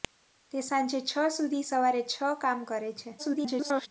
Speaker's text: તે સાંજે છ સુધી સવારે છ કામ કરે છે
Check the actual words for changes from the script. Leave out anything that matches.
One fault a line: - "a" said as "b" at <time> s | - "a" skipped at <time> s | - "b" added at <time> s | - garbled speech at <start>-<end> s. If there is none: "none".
- garbled speech at 3.2-3.9 s